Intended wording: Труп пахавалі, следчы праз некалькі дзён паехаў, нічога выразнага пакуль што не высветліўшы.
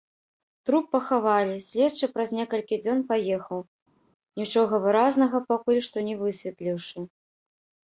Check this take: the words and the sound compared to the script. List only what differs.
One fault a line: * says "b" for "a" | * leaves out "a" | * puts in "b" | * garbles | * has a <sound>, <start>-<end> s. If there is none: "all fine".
all fine